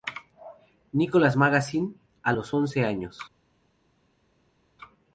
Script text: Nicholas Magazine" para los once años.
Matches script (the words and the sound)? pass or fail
fail